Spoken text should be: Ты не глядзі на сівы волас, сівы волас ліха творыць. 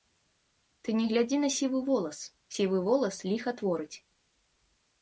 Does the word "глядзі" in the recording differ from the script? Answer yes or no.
no